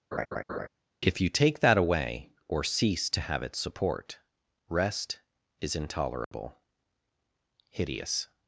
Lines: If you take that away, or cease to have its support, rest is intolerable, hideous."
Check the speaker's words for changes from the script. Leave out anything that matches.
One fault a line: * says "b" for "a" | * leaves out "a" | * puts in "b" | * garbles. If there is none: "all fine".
all fine